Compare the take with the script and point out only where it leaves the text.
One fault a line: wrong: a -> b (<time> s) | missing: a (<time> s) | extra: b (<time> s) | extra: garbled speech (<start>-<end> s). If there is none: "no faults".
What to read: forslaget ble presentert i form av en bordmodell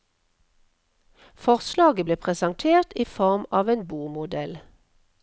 no faults